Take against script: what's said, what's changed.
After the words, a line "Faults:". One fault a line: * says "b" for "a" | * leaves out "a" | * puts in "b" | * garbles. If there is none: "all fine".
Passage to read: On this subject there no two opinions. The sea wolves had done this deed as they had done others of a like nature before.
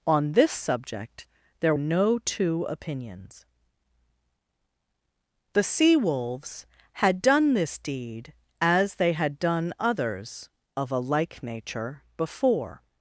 On this subject there no two opinions. The sea wolves had done this deed as they had done others of a like nature before.
Faults:
all fine